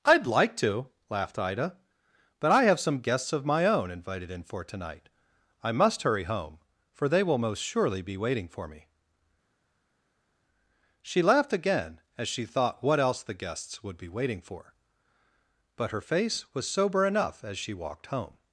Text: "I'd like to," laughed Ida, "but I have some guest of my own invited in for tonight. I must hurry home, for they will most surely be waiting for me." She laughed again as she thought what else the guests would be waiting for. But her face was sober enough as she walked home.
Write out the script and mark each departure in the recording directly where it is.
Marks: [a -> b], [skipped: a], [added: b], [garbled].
"I'd like to," laughed Ida, "but I have some [guest -> guests] of my own invited in for tonight. I must hurry home, for they will most surely be waiting for me." She laughed again as she thought what else the guests would be waiting for. But her face was sober enough as she walked home.